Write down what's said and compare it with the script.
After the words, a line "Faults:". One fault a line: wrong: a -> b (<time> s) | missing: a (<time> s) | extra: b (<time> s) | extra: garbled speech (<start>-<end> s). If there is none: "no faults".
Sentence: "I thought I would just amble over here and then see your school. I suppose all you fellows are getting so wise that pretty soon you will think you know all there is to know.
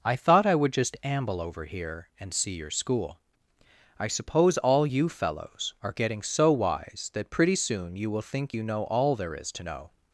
"I thought I would just amble over here and see your school. I suppose all you fellows are getting so wise that pretty soon you will think you know all there is to know.
Faults:
missing: then (2.3 s)